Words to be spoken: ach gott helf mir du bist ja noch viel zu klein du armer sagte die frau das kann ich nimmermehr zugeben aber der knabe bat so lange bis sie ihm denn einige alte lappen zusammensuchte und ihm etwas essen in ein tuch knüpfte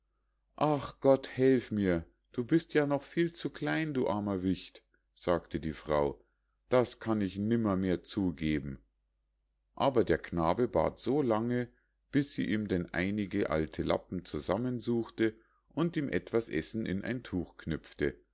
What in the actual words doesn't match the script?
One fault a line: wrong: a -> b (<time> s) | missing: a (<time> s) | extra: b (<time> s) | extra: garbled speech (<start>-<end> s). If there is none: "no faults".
extra: wicht (4.4 s)